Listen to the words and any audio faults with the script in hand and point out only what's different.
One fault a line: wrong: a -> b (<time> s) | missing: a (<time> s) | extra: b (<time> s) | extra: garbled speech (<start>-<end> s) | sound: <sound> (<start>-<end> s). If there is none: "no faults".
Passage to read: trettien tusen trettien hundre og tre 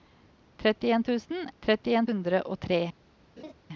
sound: laugh (3.4-3.5 s)